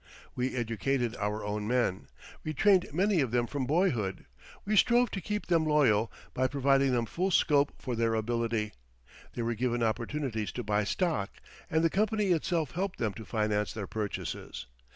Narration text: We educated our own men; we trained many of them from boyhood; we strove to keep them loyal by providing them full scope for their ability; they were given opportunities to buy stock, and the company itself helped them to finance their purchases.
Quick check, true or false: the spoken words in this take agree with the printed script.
true